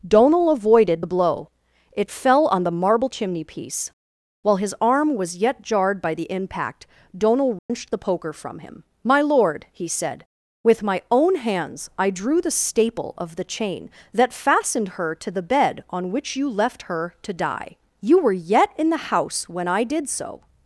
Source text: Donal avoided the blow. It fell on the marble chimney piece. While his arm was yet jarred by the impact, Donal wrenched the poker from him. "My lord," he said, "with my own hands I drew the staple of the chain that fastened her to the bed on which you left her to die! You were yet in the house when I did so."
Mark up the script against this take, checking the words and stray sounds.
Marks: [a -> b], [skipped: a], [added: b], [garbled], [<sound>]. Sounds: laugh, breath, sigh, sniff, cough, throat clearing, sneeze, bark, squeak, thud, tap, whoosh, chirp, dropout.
Donal avoided the blow. It fell on the marble chimney piece. While his arm was yet jarred by the impact, Donal wrenched [dropout] the poker from him. "My lord," he said, "with my own hands I drew the staple of the chain that fastened her to the bed on which you left her to die! You were yet in the house when I did so."